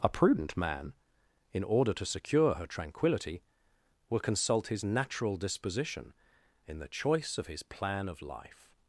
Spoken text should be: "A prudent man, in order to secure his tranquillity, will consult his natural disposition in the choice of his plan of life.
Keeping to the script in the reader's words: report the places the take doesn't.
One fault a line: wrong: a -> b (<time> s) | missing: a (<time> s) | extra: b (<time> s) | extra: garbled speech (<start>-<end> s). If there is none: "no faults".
wrong: his -> her (2.5 s)